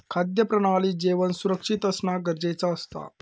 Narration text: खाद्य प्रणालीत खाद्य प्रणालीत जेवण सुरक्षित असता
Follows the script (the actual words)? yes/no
no